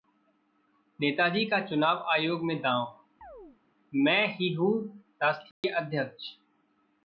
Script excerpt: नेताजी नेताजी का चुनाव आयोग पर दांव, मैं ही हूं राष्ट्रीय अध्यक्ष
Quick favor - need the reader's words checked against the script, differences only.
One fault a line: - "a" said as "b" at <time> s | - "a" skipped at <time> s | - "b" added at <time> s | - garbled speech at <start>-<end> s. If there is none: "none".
- "नेताजी" skipped at 1.4 s
- "पर" said as "में" at 2.4 s